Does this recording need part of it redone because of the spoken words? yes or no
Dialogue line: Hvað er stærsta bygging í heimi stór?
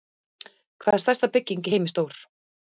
no